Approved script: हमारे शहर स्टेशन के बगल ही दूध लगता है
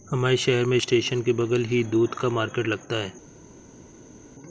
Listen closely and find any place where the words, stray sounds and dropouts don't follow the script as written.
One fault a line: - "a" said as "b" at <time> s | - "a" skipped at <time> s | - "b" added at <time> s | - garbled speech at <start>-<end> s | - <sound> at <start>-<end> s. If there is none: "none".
- "में" added at 0.7 s
- "का मार्केट" added at 2.1 s